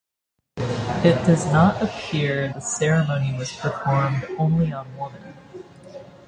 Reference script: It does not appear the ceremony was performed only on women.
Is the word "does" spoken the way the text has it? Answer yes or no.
yes